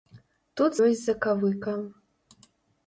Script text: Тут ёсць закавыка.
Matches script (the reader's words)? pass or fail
pass